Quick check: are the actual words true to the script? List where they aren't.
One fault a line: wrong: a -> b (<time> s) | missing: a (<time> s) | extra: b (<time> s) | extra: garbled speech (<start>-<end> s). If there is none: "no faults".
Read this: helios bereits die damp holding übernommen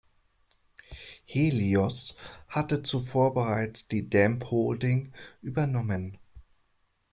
extra: hatte zuvor (2.5 s)